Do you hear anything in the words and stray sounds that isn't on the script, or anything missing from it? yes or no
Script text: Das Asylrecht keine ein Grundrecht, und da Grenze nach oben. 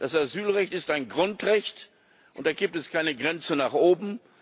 yes